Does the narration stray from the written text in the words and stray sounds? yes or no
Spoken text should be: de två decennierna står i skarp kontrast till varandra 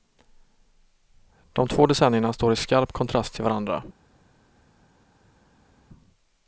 no